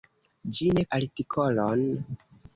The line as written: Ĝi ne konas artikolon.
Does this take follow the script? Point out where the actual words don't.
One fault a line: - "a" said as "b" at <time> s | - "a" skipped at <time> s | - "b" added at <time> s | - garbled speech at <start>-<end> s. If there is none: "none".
- "konas" skipped at 0.8 s